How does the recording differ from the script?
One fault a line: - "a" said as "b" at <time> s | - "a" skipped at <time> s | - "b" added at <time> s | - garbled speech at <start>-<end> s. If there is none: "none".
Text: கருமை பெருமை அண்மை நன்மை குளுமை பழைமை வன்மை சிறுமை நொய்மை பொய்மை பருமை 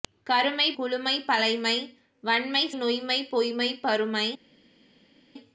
- "பெருமை அண்மை நன்மை" skipped at 0.7 s
- "சிறுமை" skipped at 2.6 s